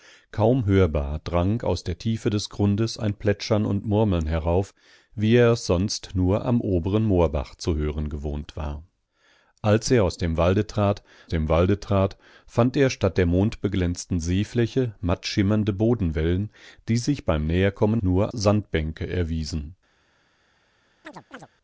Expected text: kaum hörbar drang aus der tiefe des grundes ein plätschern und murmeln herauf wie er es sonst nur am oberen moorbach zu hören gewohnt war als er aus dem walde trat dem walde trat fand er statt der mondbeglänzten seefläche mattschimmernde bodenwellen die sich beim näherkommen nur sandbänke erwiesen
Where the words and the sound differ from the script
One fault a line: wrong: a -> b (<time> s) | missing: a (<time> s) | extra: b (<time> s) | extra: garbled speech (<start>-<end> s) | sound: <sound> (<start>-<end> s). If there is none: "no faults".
sound: chirp (21.0-21.5 s)